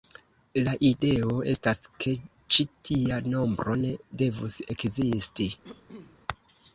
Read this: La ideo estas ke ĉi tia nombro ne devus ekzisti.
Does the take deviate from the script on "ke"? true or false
false